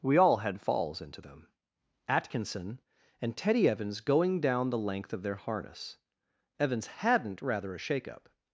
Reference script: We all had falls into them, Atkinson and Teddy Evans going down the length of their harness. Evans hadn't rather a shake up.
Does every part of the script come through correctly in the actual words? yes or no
yes